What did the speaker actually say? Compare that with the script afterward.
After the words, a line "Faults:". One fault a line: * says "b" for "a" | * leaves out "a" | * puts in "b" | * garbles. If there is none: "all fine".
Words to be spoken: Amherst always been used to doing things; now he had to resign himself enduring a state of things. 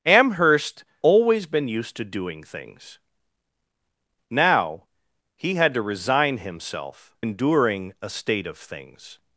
Amherst always been used to doing things; now he had to resign himself enduring a state of things.
Faults:
all fine